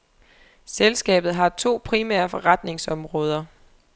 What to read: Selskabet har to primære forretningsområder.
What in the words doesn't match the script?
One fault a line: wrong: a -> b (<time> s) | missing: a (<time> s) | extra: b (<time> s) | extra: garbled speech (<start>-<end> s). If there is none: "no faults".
no faults